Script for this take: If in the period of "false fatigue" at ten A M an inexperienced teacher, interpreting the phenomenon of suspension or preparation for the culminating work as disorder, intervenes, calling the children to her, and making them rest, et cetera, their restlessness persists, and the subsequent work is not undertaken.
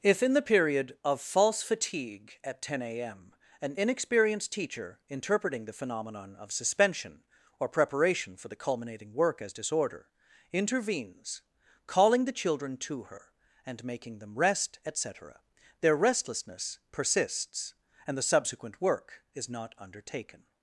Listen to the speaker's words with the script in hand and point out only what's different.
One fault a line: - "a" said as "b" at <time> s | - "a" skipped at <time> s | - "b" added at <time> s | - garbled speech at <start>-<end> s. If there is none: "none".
none